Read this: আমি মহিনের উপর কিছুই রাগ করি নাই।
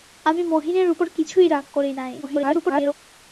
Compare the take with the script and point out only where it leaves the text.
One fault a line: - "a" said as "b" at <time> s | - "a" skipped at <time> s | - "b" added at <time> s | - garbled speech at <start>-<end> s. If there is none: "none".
- garbled speech at 2.2-2.9 s